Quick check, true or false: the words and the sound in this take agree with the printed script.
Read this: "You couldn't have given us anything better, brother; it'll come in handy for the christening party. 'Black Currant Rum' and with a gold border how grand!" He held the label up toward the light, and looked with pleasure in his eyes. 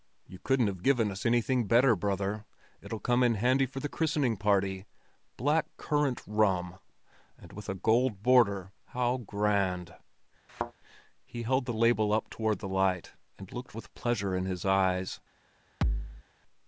false